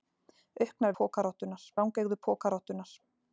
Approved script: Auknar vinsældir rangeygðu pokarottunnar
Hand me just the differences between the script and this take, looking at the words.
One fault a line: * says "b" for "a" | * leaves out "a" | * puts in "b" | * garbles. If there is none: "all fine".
* says "pokarottunnar" for "vinsældir"